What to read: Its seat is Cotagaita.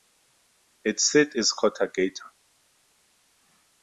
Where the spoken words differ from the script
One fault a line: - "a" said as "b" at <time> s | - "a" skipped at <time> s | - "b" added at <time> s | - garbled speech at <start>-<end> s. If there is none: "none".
none